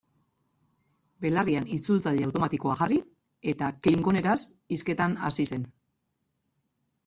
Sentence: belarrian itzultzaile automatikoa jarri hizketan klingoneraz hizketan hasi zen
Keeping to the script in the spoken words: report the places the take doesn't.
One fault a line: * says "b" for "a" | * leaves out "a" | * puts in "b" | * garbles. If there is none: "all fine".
* says "eta" for "hizketan"